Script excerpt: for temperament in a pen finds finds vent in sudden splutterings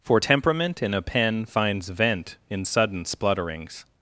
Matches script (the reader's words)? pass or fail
fail